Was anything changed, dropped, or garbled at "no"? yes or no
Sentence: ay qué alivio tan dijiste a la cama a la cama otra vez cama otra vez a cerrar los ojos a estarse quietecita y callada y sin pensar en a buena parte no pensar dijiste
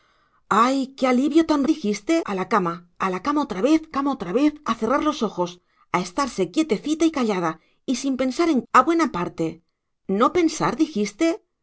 no